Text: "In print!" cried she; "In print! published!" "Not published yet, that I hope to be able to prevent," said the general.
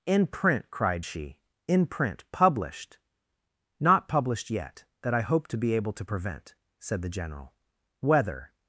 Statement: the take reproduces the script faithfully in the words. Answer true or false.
false